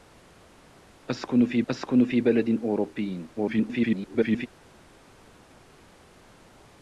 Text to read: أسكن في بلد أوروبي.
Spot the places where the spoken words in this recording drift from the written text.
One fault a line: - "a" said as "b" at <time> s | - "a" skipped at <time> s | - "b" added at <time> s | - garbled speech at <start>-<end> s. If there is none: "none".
- "أسكن في" added at 1.7 s
- garbled speech at 3.4-4.5 s